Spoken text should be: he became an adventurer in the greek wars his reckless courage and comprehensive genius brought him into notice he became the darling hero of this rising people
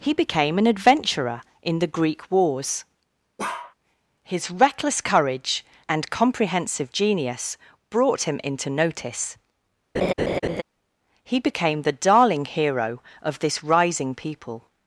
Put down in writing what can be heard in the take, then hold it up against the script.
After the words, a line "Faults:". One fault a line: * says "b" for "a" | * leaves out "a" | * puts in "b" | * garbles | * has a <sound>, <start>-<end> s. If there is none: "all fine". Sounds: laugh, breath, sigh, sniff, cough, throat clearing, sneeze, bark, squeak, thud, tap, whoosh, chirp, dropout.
he became an adventurer in the greek wars his reckless courage and comprehensive genius brought him into notice he became the darling hero of this rising people
Faults:
* has a bark, 3.4-3.7 s
* has a laugh, 9.9-10.6 s